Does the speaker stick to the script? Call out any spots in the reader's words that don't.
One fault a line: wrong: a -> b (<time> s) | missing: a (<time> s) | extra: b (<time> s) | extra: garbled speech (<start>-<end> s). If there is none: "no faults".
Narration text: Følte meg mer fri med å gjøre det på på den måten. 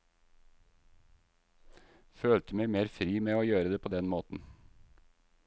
missing: på (3.9 s)